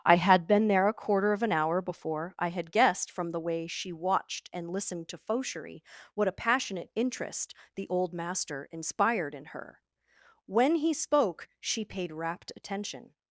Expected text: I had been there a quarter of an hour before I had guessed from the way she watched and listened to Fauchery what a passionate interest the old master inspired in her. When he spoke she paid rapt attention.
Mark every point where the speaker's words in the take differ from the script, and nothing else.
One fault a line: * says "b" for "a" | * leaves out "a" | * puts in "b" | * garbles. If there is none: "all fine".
all fine